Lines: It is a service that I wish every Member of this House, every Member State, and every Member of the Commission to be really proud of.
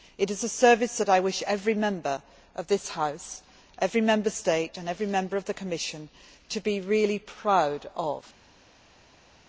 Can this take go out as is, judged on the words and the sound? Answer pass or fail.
pass